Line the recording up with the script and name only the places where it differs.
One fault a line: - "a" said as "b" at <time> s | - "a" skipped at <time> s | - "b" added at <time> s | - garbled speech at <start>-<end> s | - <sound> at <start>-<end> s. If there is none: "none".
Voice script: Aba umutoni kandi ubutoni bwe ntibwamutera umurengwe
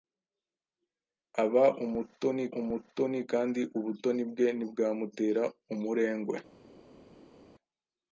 - "umutoni" added at 2.6 s